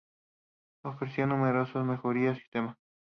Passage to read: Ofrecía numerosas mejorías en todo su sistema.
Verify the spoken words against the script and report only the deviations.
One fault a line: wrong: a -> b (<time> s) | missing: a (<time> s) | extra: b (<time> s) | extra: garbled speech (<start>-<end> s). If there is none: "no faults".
missing: en todo su (2.4 s)